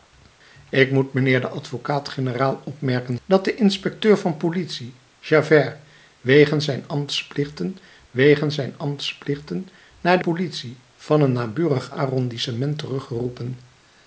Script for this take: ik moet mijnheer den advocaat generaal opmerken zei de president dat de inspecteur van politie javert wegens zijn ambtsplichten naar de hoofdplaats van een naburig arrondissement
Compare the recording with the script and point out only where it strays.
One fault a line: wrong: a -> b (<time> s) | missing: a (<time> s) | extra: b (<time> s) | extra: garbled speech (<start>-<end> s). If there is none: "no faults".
missing: zei de president (3.2 s)
extra: wegens zijn ambtsplichten (8.1 s)
wrong: hoofdplaats -> politie (10.2 s)